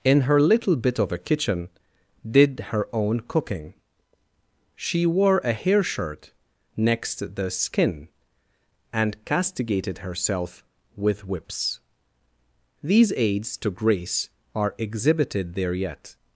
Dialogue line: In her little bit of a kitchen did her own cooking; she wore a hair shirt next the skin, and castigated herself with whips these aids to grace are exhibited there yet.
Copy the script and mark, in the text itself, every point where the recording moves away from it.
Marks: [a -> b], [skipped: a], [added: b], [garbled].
In her little bit of a kitchen did her own cooking; she wore a hair shirt next the skin, and castigated herself with whips these aids to grace are exhibited there yet.